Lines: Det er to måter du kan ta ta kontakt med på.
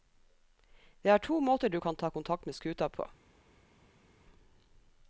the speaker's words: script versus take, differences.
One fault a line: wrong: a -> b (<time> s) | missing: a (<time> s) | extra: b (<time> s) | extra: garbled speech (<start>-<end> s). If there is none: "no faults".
missing: ta (2.1 s)
extra: skuta (2.5 s)